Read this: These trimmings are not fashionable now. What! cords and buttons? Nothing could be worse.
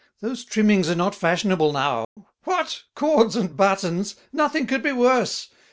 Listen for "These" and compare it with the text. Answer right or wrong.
wrong